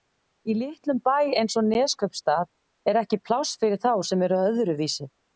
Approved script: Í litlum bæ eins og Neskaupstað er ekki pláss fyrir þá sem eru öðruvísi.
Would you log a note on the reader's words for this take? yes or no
no